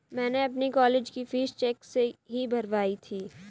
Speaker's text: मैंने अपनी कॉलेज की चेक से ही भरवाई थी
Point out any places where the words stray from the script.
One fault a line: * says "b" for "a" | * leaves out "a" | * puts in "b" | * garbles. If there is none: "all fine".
* puts in "फीस"